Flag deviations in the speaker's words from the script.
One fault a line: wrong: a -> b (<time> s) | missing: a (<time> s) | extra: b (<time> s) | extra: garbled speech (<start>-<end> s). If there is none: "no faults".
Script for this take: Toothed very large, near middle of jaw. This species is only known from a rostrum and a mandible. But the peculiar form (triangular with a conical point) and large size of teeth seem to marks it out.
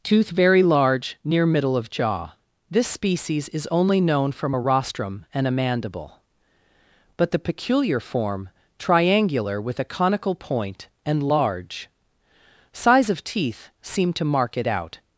wrong: Toothed -> Tooth (0.0 s)
wrong: marks -> mark (14.2 s)